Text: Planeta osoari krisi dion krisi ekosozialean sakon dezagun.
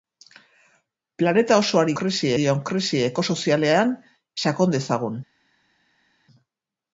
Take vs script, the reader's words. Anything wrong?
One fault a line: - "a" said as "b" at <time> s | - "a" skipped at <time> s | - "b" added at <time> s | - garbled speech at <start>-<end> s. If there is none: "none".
none